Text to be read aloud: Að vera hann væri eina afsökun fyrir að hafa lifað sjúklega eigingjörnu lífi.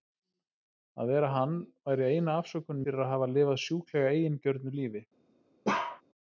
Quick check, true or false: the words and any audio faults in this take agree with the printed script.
false